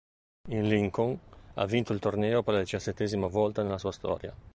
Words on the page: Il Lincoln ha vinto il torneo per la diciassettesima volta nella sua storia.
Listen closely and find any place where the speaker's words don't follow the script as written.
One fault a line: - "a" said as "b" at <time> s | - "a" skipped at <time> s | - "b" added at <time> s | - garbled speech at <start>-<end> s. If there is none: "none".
none